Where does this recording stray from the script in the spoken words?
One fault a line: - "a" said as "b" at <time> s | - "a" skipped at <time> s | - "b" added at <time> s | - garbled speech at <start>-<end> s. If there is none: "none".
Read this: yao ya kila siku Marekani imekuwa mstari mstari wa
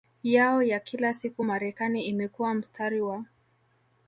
- "mstari" skipped at 3.0 s